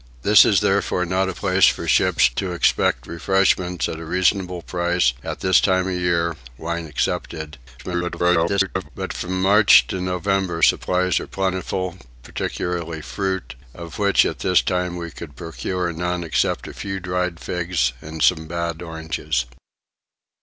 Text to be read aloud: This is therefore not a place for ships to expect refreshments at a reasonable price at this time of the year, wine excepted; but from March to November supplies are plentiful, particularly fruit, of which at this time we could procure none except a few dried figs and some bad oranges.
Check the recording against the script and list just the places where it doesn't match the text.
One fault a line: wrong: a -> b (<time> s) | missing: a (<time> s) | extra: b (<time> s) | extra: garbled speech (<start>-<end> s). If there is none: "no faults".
extra: garbled speech (7.8-8.9 s)